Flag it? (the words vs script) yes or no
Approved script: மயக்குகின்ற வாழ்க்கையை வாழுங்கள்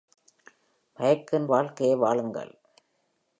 no